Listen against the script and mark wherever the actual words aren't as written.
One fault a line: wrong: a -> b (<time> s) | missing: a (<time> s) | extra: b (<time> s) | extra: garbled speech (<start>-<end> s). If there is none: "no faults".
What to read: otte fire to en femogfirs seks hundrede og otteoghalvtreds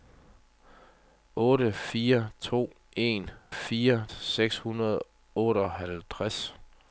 wrong: femogfirs -> fire (3.5 s)